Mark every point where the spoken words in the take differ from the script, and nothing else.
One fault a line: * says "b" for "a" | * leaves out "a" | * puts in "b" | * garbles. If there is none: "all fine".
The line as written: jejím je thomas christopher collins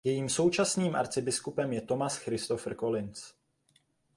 * puts in "současným arcibiskupem"